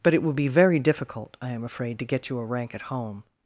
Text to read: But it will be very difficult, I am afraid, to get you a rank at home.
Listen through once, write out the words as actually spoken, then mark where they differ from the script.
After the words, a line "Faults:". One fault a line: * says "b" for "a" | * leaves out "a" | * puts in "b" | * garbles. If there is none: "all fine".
But it will be very difficult, I am afraid, to get you a rank at home.
Faults:
all fine